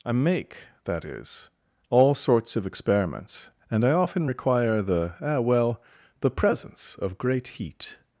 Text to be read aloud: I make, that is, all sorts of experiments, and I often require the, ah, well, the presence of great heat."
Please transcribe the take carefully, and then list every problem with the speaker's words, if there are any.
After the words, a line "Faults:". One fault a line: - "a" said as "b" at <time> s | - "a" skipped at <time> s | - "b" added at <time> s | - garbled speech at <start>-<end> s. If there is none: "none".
I make, that is, all sorts of experiments, and I often require the, ah, well, the presence of great heat."
Faults:
none